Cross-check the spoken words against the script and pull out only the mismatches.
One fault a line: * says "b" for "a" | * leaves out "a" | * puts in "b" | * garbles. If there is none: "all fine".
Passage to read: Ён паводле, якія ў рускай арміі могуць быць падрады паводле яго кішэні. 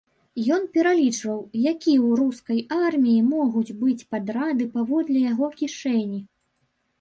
* says "пералічваў" for "паводле"